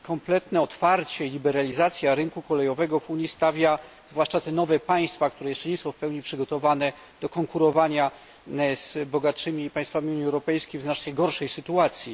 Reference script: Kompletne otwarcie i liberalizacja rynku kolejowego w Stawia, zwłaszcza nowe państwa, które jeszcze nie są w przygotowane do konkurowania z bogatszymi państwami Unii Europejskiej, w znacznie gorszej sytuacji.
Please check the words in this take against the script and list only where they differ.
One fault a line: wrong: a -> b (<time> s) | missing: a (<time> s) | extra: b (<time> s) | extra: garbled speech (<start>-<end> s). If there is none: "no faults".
extra: Unii (3.1 s)
extra: te (4.4 s)
extra: pełni (6.0 s)